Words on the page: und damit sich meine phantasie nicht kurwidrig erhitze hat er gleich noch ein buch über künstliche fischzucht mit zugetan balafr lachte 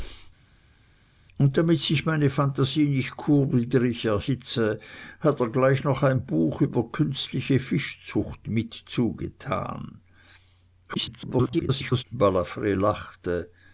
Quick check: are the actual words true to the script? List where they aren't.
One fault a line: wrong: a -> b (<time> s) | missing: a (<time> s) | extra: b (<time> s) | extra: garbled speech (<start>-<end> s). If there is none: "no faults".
extra: garbled speech (10.9-12.0 s)